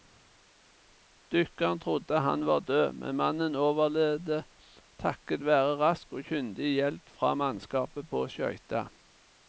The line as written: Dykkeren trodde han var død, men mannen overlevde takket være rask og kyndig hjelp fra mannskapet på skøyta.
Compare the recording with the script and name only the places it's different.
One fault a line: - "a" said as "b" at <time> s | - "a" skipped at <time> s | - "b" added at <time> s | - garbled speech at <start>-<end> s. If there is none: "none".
none